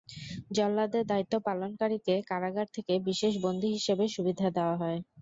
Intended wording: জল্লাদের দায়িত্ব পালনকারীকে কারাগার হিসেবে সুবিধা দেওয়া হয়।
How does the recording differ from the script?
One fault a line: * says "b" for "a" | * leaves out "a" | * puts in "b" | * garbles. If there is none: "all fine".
* puts in "থেকে বিশেষ বন্দী"